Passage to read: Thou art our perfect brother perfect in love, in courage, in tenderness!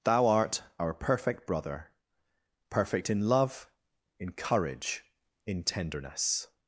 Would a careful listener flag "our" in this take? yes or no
no